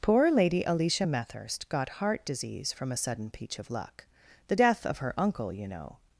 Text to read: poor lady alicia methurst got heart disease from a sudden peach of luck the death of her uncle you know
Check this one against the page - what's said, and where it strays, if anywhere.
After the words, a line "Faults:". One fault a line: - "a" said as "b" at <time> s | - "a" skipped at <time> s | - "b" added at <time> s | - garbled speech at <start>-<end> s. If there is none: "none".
poor lady alicia methurst got heart disease from a sudden peach of luck the death of her uncle you know
Faults:
none